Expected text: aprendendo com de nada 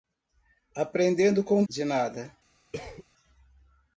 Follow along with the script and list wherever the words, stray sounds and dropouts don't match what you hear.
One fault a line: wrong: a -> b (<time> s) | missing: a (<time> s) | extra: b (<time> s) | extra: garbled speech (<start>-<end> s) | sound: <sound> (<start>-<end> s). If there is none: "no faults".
sound: cough (2.7-3.0 s)